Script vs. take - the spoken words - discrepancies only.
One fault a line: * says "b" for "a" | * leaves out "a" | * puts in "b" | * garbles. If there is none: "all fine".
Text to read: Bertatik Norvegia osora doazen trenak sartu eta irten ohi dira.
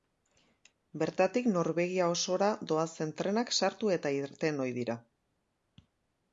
all fine